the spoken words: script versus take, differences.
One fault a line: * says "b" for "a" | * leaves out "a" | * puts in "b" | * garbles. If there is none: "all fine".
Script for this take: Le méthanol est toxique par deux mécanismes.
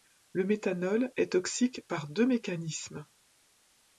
all fine